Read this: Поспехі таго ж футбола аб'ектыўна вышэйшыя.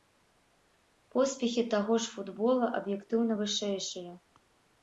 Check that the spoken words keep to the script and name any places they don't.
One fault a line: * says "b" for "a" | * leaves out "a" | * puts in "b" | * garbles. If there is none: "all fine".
all fine